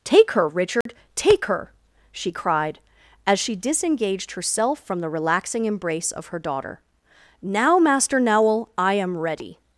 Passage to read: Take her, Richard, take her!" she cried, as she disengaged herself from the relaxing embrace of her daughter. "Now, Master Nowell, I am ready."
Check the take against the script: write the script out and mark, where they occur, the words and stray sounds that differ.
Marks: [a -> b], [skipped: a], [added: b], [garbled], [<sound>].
Take her, Richard, [dropout] take her!" she cried, as she disengaged herself from the relaxing embrace of her daughter. "Now, Master Nowell, I am ready."